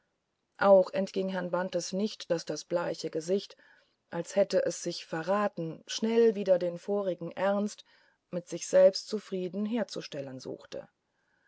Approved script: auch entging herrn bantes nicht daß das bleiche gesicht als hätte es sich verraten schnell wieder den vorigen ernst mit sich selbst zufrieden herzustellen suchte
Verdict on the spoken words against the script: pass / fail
pass